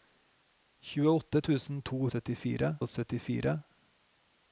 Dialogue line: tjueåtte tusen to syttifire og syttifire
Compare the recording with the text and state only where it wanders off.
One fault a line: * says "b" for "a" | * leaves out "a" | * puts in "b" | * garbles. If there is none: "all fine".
all fine